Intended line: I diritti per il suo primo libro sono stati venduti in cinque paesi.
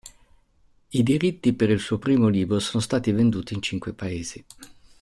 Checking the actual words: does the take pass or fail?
pass